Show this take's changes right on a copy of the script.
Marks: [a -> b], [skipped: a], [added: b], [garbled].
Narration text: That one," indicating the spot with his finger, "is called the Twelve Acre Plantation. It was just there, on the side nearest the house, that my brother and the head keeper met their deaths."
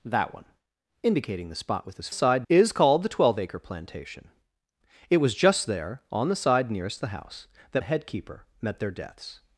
That one," indicating the spot with his [finger, -> side] "is called the Twelve Acre Plantation. It was just there, on the side nearest the house, that [skipped: my brother and] the head keeper met their deaths."